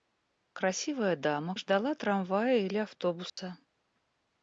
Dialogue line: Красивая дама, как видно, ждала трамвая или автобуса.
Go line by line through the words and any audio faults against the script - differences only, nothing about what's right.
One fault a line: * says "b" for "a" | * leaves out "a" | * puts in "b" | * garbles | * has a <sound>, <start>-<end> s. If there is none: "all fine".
* leaves out "как видно"
* has a dropout, 3.3-3.4 s